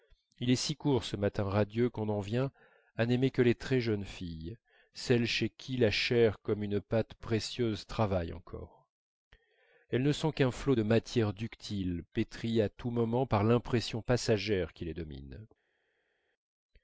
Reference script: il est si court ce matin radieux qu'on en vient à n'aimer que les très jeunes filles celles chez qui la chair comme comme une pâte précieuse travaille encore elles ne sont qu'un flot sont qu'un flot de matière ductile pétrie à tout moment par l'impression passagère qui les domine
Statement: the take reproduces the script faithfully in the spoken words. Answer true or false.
false